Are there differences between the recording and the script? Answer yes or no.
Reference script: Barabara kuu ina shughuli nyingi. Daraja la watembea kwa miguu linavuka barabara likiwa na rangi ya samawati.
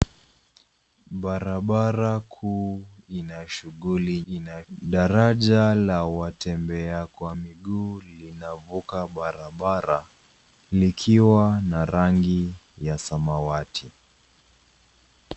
yes